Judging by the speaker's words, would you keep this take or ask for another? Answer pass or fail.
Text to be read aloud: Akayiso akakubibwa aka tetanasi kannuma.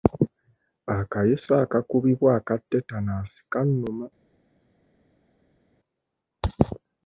pass